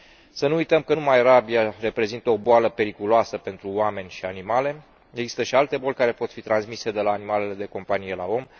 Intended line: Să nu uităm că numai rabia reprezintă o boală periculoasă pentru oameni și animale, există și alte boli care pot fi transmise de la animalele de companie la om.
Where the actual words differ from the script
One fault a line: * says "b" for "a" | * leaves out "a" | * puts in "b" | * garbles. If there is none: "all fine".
all fine